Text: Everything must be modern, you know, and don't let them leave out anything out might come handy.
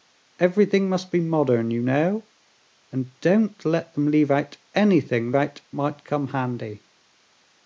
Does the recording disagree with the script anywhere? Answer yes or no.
no